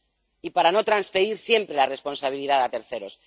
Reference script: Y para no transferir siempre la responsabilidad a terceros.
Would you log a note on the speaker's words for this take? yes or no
no